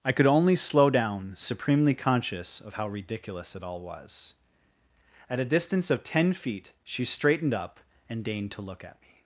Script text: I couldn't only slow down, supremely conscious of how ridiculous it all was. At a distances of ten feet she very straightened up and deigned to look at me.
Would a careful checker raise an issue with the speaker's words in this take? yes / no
yes